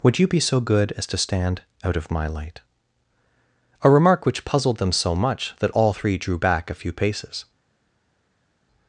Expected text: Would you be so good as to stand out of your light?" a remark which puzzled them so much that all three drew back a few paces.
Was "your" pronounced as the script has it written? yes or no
no